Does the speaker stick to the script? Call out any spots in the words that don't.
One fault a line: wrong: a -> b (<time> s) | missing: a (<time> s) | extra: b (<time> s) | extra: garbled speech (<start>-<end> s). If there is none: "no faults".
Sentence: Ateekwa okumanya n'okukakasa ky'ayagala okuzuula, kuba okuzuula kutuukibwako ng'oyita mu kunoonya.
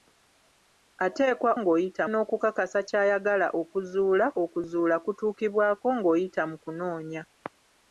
wrong: okumanya -> ng'oyita (1.6 s)
missing: kuba (4.2 s)